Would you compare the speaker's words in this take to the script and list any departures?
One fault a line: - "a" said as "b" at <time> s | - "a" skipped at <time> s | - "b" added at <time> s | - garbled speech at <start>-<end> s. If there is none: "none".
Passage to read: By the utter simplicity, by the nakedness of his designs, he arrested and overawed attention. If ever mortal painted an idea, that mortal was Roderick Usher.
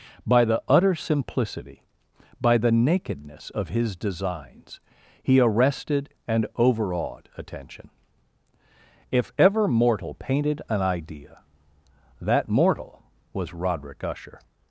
none